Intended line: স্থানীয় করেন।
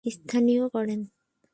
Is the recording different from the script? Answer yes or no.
no